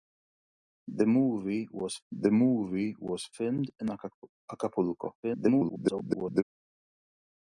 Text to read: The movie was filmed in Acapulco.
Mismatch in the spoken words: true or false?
true